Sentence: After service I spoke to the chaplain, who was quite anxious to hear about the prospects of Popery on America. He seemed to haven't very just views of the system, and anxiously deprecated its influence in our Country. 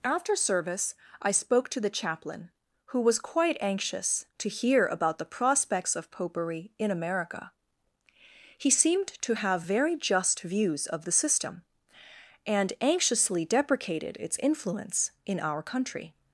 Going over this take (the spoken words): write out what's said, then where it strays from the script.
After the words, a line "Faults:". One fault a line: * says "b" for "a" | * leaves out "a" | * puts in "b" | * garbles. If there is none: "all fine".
After service I spoke to the chaplain, who was quite anxious to hear about the prospects of Popery in America. He seemed to have very just views of the system, and anxiously deprecated its influence in our Country.
Faults:
* says "in" for "on"
* says "have" for "haven't"